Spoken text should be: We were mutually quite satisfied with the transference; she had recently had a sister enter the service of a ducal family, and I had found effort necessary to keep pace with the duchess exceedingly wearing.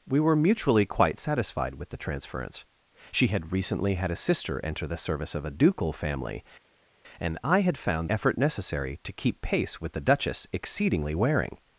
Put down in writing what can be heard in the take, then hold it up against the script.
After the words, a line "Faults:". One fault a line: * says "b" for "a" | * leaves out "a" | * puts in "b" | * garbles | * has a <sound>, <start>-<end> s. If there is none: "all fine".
We were mutually quite satisfied with the transference; she had recently had a sister enter the service of a ducal family, and I had found effort necessary to keep pace with the duchess exceedingly wearing.
Faults:
all fine